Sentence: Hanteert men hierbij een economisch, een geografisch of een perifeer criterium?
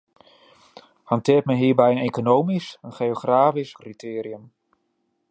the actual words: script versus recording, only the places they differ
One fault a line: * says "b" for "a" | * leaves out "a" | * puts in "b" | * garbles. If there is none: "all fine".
* leaves out "of een perifeer"